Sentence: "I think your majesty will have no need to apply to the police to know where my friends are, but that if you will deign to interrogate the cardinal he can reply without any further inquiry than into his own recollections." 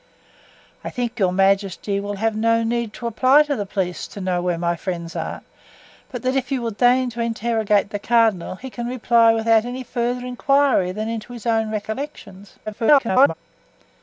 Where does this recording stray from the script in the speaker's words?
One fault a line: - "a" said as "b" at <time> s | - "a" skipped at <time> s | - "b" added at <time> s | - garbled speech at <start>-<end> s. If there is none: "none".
- garbled speech at 12.7-13.3 s